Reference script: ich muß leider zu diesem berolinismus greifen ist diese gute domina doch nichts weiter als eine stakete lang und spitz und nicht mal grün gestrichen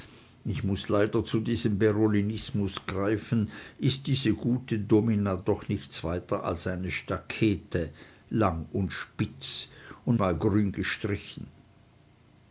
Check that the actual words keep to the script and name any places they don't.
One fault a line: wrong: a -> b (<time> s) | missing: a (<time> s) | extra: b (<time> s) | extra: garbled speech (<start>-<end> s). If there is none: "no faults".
missing: nicht (10.2 s)